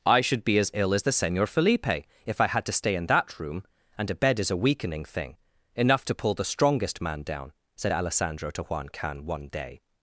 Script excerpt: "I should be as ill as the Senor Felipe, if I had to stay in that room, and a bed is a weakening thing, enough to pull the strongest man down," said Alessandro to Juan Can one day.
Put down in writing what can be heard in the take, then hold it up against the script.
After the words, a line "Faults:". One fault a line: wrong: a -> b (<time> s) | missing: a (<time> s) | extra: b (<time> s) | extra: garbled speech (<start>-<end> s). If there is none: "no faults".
"I should be as ill as the Senor Felipe, if I had to stay in that room, and a bed is a weakening thing, enough to pull the strongest man down," said Alessandro to Juan Can one day.
Faults:
no faults